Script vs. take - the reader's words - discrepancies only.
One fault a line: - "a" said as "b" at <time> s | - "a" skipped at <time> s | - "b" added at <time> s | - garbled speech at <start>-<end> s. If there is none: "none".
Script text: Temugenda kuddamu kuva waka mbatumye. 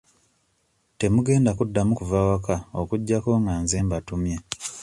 - "okuggyako nga nze" added at 2.8 s